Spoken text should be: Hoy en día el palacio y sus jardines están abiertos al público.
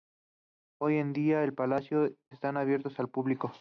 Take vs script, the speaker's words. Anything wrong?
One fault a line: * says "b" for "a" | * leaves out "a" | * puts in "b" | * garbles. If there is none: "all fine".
* leaves out "y sus jardines"